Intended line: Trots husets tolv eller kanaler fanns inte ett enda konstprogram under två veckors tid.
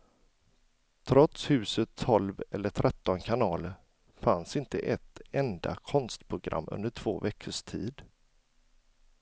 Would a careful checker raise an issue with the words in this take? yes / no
yes